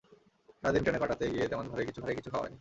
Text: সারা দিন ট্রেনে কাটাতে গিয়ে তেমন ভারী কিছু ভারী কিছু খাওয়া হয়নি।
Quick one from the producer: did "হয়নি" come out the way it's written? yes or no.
yes